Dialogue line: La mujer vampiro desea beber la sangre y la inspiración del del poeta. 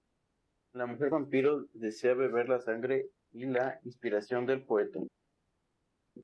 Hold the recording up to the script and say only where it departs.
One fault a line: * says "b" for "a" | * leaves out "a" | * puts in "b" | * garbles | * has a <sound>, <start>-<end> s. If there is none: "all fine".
* leaves out "del"